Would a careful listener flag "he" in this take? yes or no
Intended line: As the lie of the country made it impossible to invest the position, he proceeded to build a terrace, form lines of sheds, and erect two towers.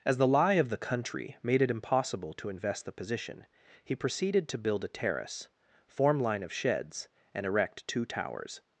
no